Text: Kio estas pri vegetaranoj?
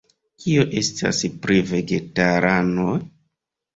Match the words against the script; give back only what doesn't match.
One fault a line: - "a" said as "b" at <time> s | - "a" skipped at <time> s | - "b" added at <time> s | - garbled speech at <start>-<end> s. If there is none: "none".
none